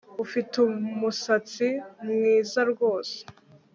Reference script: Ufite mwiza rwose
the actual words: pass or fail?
fail